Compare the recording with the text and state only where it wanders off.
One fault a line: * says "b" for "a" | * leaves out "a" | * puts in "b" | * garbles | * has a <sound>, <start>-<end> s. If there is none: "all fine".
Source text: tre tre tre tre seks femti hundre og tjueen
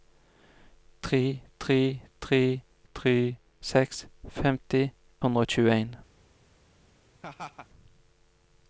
* has a laugh, 7.2-7.7 s